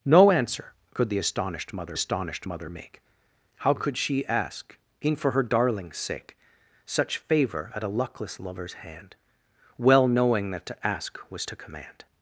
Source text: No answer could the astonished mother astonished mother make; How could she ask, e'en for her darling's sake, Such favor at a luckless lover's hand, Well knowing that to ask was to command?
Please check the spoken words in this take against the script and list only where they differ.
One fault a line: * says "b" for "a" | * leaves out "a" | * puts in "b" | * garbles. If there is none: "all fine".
all fine